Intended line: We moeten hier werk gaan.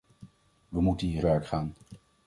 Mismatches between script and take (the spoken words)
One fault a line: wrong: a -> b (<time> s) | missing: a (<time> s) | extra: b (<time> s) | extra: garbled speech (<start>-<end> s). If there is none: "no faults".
no faults